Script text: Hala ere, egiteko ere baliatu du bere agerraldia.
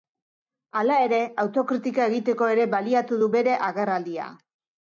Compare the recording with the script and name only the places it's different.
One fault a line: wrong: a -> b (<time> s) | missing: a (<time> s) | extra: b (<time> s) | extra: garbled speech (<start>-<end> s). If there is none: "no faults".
extra: autokritika (1.4 s)